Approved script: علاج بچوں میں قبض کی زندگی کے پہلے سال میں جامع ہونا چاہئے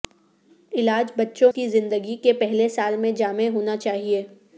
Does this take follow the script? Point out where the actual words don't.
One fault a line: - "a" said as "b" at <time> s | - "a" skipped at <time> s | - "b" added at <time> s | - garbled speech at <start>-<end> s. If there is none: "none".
- "میں قبض" skipped at 1.5 s